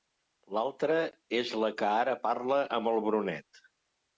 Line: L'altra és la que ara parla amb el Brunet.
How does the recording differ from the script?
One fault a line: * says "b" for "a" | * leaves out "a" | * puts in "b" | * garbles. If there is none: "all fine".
all fine